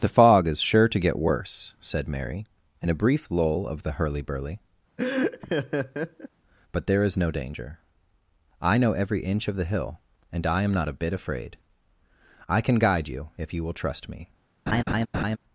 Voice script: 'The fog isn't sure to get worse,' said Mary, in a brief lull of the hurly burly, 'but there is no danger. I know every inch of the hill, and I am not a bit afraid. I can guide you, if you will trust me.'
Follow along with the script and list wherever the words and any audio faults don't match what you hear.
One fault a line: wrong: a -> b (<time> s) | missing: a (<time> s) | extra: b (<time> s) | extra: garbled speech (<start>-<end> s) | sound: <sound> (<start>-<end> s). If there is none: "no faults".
wrong: isn't -> is (0.5 s)
sound: laugh (5.0-6.3 s)
sound: laugh (14.7-15.4 s)